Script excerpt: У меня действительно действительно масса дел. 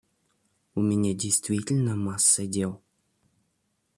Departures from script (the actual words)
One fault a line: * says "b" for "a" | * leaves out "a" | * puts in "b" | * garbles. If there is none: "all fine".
* leaves out "действительно"